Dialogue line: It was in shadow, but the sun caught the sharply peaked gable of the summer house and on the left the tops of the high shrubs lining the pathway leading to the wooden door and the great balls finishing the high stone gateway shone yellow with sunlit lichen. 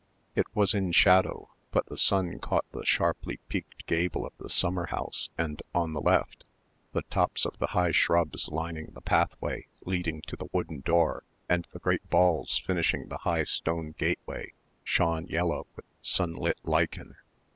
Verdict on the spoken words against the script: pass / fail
pass